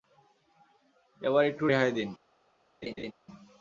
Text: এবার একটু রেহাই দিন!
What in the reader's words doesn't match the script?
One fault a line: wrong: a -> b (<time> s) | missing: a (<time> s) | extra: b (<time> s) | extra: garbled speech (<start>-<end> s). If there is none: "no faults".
no faults